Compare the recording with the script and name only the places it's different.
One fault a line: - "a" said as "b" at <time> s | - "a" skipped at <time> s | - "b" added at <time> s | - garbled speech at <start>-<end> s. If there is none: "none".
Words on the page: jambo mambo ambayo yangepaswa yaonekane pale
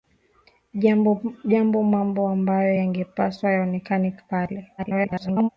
- garbled speech at 4.8-5.5 s